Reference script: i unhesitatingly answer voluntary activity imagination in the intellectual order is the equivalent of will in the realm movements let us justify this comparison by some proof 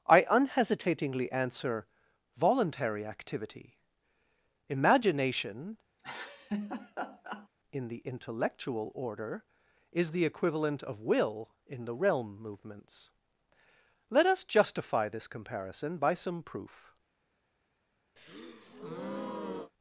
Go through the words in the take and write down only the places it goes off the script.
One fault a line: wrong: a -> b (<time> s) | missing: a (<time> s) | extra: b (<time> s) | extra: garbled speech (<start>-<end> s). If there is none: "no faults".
no faults